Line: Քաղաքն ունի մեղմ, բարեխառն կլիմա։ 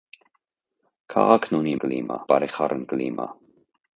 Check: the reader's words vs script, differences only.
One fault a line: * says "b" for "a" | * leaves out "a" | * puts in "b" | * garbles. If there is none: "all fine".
* says "կլիմա" for "մեղմ"